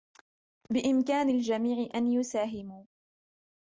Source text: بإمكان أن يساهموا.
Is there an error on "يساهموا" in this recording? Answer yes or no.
no